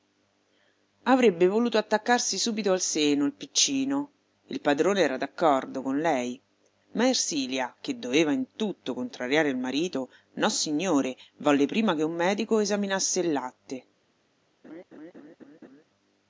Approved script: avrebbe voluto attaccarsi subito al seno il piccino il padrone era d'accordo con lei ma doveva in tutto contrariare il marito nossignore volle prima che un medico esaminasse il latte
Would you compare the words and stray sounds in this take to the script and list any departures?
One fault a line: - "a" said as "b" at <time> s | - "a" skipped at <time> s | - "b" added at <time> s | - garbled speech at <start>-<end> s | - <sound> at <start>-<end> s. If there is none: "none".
- "ersilia che" added at 7.1 s
- laugh at 14.6-15.8 s